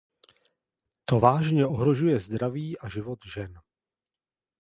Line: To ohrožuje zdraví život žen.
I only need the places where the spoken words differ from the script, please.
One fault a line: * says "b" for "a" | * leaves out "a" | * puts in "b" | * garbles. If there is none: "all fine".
* puts in "vážně"
* puts in "a"